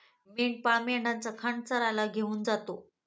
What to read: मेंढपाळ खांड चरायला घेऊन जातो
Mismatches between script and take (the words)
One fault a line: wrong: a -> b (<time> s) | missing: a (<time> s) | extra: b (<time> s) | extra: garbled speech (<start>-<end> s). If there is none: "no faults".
extra: मेंढ्यांचा (0.8 s)